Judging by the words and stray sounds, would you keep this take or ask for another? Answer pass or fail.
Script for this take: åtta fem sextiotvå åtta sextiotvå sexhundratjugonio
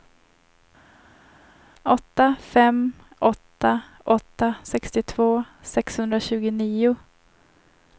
fail